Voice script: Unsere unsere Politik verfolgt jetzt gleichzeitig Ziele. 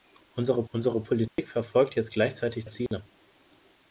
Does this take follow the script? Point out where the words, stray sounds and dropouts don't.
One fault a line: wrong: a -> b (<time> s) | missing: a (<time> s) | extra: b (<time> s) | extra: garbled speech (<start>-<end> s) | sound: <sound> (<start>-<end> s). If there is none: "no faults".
sound: dropout (1.3-1.4 s)
sound: dropout (2.9-2.9 s)